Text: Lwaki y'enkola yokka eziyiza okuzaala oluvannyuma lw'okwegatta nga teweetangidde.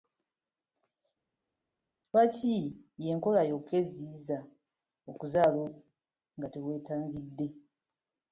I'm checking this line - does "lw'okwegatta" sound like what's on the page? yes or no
no